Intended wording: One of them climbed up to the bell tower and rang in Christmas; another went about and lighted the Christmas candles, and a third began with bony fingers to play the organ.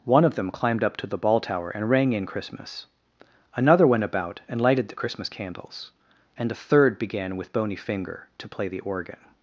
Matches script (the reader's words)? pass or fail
fail